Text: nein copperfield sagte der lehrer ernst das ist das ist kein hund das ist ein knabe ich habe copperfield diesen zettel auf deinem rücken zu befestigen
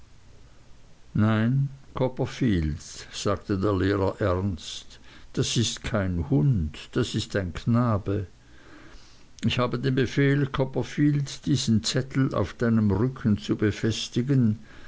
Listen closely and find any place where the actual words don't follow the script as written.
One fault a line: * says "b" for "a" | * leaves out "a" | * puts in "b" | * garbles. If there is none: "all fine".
* leaves out "das ist"
* puts in "den befehl"